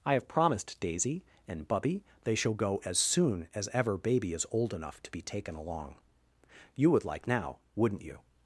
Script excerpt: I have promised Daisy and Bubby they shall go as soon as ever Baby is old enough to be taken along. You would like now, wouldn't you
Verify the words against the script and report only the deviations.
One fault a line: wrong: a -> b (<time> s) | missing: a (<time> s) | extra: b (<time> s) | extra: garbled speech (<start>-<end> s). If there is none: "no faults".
no faults